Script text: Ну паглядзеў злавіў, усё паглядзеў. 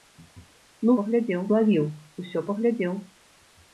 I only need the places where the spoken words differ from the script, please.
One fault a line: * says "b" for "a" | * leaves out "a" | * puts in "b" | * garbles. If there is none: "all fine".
all fine